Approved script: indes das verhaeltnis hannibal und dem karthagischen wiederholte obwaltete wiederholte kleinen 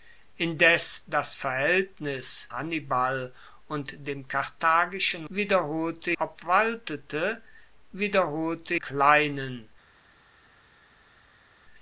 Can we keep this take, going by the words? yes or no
yes